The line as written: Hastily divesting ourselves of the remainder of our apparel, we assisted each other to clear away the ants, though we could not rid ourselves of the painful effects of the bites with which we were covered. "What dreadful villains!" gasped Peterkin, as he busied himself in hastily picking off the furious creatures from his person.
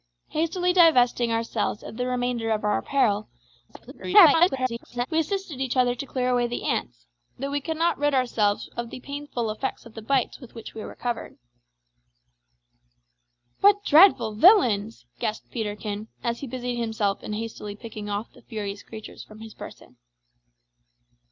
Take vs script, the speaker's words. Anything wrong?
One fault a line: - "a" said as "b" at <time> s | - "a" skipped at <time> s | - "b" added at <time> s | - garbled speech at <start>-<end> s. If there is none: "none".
- garbled speech at 3.7-5.1 s